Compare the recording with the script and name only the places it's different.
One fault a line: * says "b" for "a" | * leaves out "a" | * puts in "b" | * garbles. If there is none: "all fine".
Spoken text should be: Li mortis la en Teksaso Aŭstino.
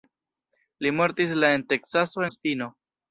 all fine